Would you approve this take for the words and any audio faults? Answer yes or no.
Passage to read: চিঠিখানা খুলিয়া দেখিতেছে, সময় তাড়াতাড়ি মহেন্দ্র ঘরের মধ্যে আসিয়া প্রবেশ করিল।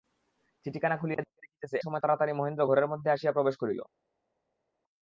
yes